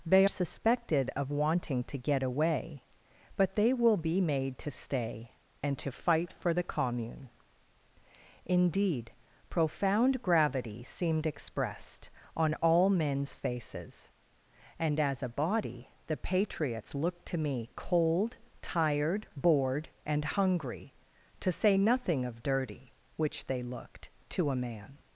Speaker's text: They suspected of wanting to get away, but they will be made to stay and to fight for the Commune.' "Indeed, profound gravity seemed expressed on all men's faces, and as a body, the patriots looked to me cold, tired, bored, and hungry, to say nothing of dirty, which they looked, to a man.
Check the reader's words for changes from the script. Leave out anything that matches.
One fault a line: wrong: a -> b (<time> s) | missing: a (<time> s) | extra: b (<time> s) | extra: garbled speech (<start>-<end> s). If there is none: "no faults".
no faults